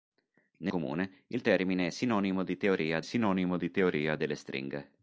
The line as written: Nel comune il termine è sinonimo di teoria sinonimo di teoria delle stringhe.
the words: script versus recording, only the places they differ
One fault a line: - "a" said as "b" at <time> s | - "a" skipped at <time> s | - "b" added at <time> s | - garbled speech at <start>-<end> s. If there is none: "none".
none